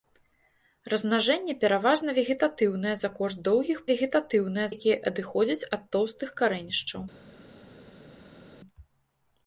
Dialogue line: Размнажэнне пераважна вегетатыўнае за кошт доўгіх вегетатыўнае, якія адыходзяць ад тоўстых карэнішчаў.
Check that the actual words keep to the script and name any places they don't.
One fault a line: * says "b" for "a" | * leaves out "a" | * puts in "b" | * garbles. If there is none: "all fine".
all fine